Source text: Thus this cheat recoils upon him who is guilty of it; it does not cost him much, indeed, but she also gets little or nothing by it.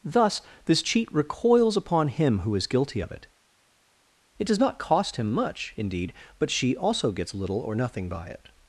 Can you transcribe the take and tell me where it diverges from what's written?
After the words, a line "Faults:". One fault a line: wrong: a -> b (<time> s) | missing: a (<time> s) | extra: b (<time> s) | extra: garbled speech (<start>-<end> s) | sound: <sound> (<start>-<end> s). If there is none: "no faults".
Thus this cheat recoils upon him who is guilty of it; it does not cost him much, indeed, but she also gets little or nothing by it.
Faults:
no faults